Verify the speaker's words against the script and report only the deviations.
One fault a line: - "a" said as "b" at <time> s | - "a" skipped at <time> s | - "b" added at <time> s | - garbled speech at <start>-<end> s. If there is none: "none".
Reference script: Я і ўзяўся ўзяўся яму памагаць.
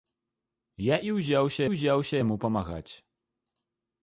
none